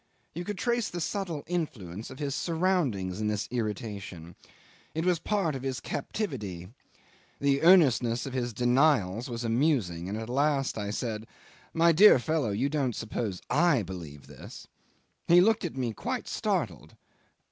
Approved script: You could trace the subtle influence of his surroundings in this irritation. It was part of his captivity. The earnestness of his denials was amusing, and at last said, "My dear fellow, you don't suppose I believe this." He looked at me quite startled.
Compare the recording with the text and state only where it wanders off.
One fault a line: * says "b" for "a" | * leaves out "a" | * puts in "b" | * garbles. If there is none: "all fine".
* puts in "I"